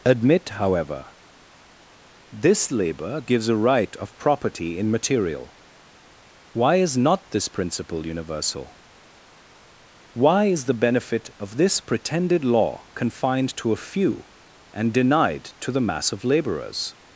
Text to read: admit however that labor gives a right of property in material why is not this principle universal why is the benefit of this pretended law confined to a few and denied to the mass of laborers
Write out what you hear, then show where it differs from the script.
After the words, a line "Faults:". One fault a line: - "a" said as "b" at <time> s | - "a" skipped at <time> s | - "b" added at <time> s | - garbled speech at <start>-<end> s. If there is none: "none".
admit however this labor gives a right of property in material why is not this principle universal why is the benefit of this pretended law confined to a few and denied to the mass of laborers
Faults:
- "that" said as "this" at 2.3 s